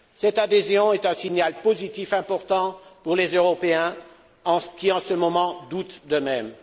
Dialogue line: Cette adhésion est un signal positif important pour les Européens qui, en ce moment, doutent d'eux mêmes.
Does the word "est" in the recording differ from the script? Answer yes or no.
no